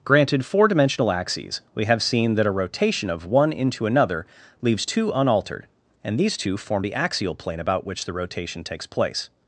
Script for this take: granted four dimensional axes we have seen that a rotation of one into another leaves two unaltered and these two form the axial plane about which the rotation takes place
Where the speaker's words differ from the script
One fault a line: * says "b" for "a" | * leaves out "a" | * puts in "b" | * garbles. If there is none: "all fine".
all fine